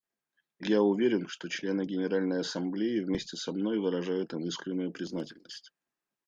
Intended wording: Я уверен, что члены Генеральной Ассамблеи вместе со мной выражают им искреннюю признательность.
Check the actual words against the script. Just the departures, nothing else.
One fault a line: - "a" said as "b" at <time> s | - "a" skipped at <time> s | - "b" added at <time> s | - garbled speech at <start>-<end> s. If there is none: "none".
none